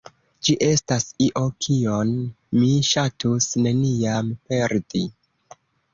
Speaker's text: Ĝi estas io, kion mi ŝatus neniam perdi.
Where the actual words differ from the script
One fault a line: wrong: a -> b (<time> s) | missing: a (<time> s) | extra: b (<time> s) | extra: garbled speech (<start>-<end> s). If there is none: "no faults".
no faults